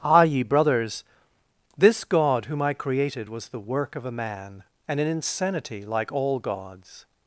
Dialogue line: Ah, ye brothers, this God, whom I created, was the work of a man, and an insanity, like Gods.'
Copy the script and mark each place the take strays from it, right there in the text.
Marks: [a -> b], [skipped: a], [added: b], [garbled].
Ah, ye brothers, this God, whom I created, was the work of a man, and an insanity, like [added: all] Gods.'